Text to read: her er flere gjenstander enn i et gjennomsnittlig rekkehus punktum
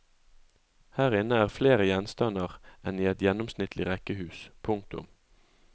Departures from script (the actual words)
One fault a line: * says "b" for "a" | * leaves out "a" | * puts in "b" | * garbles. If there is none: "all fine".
* puts in "inne"